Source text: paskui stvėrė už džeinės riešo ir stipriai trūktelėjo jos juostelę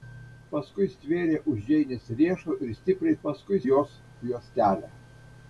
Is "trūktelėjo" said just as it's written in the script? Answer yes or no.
no